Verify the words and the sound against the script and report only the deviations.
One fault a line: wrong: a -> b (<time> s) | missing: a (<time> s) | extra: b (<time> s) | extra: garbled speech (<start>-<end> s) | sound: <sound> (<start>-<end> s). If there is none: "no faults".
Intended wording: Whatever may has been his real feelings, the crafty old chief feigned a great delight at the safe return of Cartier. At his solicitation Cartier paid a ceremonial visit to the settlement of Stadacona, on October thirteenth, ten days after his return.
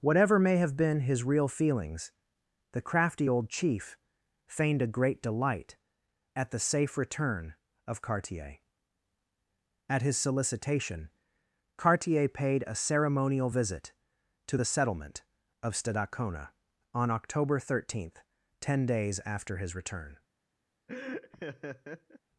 wrong: has -> have (0.6 s)
sound: laugh (20.9-22.2 s)